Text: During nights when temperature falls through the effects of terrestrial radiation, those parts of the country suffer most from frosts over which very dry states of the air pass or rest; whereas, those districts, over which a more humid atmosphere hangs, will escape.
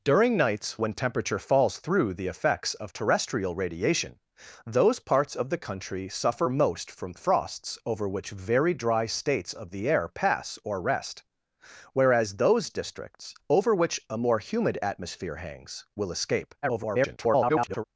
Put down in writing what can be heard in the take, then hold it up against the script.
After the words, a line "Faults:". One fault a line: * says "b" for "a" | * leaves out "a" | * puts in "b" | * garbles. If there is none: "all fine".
During nights when temperature falls through the effects of terrestrial radiation, those parts of the country suffer most from frosts over which very dry states of the air pass or rest; whereas, those districts, over which a more humid atmosphere hangs, will escape. [garbled]
Faults:
* garbles